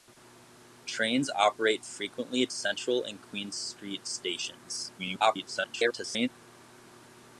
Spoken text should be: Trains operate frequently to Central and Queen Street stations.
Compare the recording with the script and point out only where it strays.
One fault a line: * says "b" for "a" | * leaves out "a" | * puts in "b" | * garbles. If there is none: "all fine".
* leaves out "to"
* garbles